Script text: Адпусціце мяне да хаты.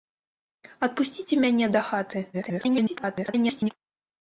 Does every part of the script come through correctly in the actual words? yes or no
no